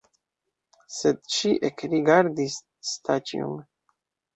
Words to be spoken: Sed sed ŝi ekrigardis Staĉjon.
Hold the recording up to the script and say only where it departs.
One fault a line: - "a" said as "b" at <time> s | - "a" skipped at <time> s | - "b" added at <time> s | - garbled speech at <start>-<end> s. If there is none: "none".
- "sed" skipped at 1.2 s